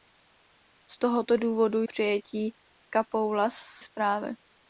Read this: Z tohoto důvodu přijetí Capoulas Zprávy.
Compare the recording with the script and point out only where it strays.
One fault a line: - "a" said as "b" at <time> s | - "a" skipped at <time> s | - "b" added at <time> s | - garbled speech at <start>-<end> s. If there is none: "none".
none